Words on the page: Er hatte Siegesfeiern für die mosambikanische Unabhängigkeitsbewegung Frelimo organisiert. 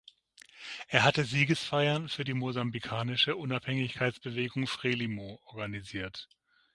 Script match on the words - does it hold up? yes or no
yes